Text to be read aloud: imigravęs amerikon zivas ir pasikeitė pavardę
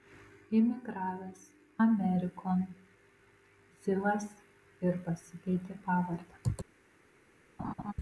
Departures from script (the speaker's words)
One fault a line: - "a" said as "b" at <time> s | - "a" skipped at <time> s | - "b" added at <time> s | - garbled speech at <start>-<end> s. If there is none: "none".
none